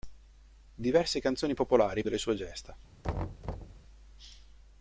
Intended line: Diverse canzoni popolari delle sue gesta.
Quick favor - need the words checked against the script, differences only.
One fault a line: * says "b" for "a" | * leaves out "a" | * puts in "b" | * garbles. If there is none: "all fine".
all fine